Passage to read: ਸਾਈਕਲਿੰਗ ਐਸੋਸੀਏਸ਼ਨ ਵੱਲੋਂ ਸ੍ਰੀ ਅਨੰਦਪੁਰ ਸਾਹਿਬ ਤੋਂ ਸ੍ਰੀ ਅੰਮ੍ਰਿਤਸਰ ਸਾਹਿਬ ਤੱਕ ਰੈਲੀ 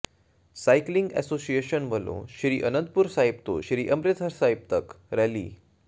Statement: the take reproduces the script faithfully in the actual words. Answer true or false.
true